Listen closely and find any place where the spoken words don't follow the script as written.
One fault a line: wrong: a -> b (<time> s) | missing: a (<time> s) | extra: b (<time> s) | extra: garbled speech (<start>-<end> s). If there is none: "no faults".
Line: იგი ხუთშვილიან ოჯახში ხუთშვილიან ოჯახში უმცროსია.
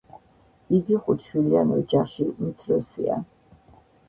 missing: ხუთშვილიან ოჯახში (2.3 s)